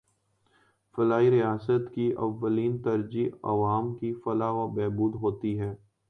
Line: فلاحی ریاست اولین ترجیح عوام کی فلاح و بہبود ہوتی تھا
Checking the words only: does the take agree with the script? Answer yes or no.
no